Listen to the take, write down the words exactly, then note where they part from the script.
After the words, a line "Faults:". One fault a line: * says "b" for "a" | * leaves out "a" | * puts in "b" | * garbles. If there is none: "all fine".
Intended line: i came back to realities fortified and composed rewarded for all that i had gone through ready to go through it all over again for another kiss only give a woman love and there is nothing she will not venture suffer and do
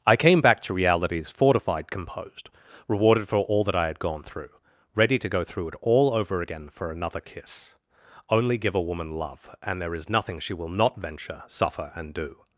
i came back to realities fortified composed rewarded for all that i had gone through ready to go through it all over again for another kiss only give a woman love and there is nothing she will not venture suffer and do
Faults:
* leaves out "and"